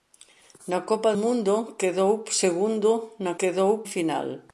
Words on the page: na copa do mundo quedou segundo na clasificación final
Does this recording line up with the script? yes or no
no